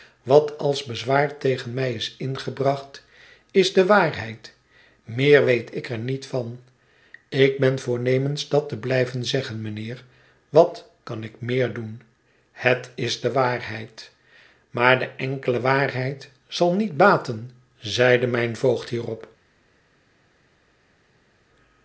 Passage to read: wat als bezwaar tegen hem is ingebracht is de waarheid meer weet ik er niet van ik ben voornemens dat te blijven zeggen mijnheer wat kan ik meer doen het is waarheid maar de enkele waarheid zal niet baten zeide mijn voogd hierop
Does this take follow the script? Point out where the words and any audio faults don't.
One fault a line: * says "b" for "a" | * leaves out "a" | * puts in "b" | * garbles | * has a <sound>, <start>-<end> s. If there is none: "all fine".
* says "mij" for "hem"
* puts in "de"